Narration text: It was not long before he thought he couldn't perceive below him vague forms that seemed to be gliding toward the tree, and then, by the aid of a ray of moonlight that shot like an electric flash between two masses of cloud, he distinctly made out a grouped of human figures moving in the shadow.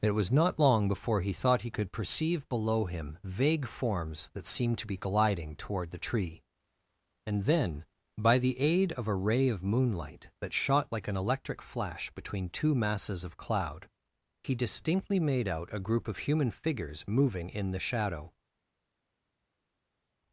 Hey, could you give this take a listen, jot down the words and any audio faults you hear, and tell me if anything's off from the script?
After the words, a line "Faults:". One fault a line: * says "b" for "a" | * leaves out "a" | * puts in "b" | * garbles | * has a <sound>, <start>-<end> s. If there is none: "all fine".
It was not long before he thought he could perceive below him vague forms that seemed to be gliding toward the tree, and then, by the aid of a ray of moonlight that shot like an electric flash between two masses of cloud, he distinctly made out a group of human figures moving in the shadow.
Faults:
* says "could" for "couldn't"
* says "group" for "grouped"